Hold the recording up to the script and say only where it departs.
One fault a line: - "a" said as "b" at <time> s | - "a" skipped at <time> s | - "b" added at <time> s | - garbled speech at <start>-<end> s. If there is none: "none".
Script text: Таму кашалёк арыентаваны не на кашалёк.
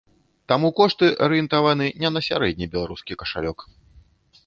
- "кашалёк" said as "кошты" at 0.8 s
- "сярэдні беларускі" added at 2.3 s